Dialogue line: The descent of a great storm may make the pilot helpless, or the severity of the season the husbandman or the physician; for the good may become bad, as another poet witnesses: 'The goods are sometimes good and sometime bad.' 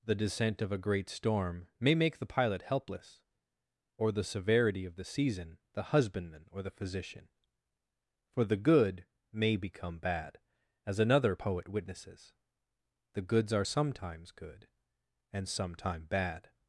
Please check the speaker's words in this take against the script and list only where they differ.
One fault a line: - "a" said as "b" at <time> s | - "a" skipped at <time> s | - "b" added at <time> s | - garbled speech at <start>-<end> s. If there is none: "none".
none